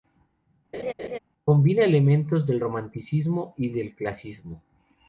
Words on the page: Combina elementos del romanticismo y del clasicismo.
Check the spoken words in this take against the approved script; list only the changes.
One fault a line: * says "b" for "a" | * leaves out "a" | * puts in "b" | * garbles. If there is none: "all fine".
all fine